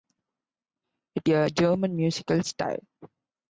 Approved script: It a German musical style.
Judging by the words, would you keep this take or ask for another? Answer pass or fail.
pass